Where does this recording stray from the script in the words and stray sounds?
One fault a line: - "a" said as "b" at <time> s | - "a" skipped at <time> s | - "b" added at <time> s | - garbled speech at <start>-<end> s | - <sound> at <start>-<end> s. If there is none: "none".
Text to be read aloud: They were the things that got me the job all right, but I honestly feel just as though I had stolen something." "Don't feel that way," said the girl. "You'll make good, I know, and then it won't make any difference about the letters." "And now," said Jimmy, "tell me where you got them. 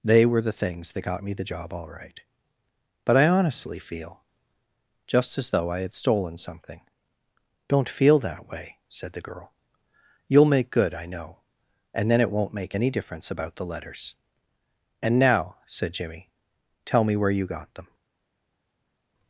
none